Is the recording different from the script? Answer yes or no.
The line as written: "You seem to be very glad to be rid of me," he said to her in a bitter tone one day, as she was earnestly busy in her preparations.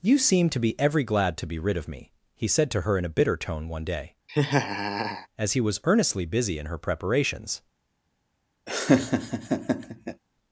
yes